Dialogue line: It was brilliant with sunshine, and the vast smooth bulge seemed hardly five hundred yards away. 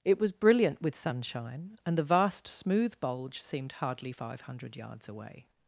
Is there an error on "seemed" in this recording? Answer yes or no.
no